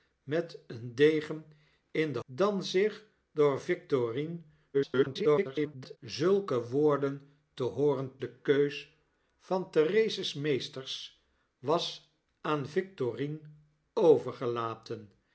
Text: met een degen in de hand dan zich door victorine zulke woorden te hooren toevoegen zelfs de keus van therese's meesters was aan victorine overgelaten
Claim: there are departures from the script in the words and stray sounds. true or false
true